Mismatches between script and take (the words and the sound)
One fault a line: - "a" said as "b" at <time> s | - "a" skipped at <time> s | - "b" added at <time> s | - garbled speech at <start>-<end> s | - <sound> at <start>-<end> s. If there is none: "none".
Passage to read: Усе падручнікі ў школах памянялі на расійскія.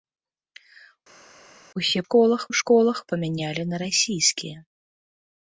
- "падручнікі" said as "школах" at 2.1 s